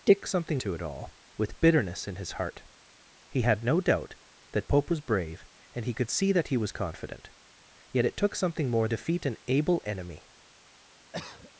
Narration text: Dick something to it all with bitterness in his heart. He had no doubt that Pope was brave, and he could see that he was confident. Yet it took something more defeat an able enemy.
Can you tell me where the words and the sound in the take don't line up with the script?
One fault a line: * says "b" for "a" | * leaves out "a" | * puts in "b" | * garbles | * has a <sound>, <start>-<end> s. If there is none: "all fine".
* has a cough, 11.1-11.5 s